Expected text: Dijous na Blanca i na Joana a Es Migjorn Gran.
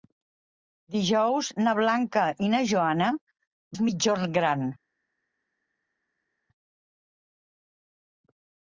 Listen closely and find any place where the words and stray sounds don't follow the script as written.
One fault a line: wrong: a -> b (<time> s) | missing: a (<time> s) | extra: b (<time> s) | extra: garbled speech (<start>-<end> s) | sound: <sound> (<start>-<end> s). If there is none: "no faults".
no faults